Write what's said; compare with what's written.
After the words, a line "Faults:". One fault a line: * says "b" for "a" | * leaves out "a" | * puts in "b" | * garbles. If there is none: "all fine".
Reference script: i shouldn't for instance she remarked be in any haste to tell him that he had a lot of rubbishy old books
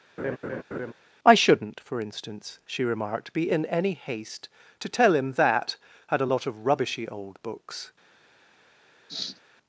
i shouldn't for instance she remarked be in any haste to tell him that had a lot of rubbishy old books
Faults:
* leaves out "he"